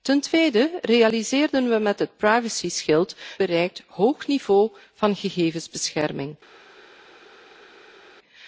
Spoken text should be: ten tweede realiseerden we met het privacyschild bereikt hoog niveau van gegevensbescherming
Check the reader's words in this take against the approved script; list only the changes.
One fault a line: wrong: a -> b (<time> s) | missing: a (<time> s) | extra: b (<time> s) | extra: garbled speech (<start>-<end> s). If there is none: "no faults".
no faults